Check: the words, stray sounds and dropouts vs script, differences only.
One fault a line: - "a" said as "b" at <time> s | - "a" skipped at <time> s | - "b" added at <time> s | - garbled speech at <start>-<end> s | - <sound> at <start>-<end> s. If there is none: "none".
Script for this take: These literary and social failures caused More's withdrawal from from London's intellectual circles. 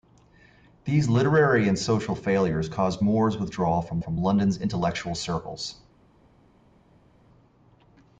none